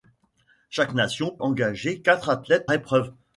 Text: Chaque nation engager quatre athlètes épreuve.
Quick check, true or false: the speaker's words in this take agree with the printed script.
true